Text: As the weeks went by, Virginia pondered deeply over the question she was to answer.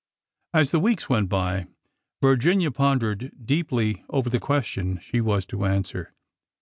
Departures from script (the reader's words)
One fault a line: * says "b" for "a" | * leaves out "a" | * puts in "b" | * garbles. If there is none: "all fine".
all fine